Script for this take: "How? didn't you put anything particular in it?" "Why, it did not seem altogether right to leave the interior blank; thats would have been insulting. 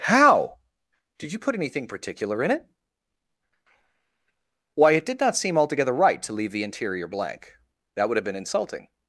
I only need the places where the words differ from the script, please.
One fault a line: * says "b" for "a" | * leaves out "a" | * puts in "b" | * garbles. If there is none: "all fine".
* says "did" for "didn't"
* says "that" for "thats"